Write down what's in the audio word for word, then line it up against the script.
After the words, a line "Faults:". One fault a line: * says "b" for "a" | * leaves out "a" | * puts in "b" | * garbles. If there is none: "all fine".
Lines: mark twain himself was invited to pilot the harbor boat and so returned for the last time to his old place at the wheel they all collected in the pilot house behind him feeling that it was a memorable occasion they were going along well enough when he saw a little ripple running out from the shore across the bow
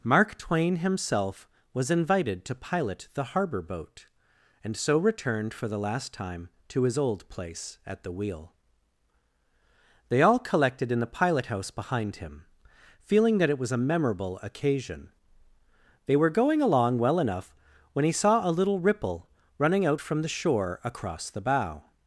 mark twain himself was invited to pilot the harbor boat and so returned for the last time to his old place at the wheel they all collected in the pilot house behind him feeling that it was a memorable occasion they were going along well enough when he saw a little ripple running out from the shore across the bow
Faults:
all fine